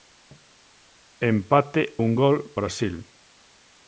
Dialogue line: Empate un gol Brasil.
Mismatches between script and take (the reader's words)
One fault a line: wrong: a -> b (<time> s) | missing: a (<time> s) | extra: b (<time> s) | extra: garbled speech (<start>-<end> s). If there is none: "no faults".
no faults